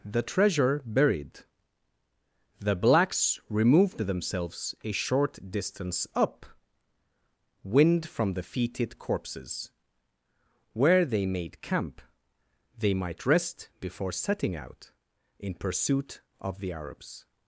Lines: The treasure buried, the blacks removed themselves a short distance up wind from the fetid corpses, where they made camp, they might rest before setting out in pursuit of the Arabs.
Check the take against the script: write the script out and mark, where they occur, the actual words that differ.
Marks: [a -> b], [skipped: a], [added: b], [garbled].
The treasure buried, the blacks removed themselves a short distance up wind from the fetid corpses, where they made camp, they might rest before setting out in pursuit of the Arabs.